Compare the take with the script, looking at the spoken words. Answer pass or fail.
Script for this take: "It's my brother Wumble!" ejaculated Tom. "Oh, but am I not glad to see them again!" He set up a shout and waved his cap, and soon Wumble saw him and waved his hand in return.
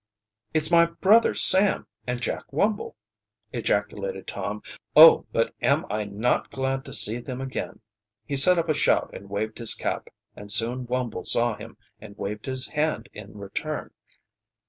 fail